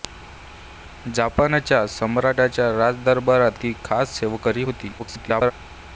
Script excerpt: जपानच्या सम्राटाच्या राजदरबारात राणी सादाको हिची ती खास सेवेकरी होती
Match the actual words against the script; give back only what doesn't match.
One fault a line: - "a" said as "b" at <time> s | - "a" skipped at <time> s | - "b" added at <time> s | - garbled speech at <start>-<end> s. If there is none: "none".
- "राणी सादाको हिची" skipped at 3.6 s
- garbled speech at 5.0-5.5 s